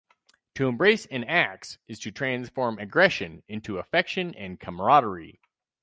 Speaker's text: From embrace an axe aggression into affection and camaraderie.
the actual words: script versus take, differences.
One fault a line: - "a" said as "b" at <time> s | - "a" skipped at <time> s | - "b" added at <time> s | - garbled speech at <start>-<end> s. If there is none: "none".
- "From" said as "To" at 0.6 s
- "is to transform" added at 1.9 s